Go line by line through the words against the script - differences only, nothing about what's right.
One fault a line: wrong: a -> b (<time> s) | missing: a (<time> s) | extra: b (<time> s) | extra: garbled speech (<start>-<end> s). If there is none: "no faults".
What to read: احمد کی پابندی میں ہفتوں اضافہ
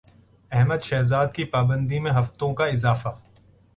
extra: شہزاد (0.8 s)
extra: کا (2.5 s)